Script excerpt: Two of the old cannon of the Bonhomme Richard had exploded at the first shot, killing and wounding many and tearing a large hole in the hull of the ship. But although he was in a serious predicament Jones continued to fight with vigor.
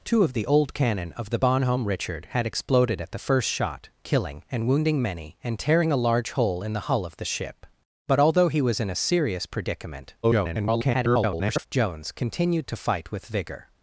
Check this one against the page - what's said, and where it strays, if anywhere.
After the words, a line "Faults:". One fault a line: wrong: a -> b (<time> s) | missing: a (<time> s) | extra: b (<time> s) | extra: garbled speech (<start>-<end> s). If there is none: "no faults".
Two of the old cannon of the Bonhomme Richard had exploded at the first shot, killing and wounding many and tearing a large hole in the hull of the ship. But although he was in a serious predicament [garbled] Jones continued to fight with vigor.
Faults:
extra: garbled speech (10.2-11.7 s)